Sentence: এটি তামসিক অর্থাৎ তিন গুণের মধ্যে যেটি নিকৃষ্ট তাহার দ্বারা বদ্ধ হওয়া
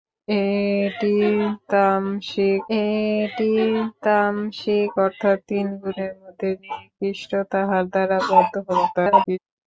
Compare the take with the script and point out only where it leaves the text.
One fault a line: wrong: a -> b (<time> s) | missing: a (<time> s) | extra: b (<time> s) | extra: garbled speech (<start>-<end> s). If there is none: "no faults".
extra: এটি তামসিক (2.8 s)
missing: যেটি (6.5 s)
extra: garbled speech (8.9-9.4 s)